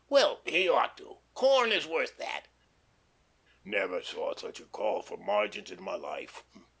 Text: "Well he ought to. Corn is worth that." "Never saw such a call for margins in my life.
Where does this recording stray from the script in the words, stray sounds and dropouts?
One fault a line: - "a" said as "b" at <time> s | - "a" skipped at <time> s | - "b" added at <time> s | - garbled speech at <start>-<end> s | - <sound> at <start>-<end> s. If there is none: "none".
none